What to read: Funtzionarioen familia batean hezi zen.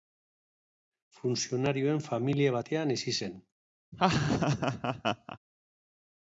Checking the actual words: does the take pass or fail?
pass